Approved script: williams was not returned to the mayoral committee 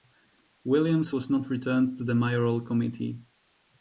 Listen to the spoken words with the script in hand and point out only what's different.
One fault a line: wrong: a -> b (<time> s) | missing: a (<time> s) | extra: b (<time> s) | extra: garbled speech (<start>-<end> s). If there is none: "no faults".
no faults